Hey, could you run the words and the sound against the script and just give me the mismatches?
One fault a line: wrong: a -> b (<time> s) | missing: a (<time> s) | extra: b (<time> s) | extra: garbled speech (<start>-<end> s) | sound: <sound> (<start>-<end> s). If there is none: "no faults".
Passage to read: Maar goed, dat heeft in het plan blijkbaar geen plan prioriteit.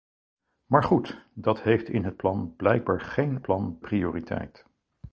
no faults